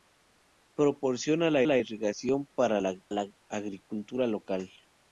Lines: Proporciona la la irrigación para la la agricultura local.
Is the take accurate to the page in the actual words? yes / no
yes